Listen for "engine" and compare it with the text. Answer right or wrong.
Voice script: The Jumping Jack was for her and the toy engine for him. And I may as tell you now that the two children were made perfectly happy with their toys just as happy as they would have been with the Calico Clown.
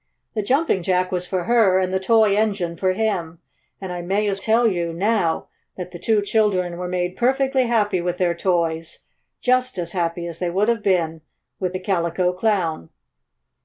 right